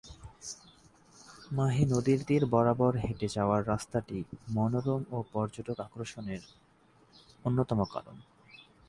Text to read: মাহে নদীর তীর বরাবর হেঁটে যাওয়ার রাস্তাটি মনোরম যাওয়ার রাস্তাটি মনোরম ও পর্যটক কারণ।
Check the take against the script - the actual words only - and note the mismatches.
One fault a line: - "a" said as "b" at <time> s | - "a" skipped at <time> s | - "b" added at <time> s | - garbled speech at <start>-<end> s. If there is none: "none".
- "যাওয়ার রাস্তাটি মনোরম ও পর্যটক" said as "ও পর্যটক আকর্ষণের অন্যতম" at 5.1 s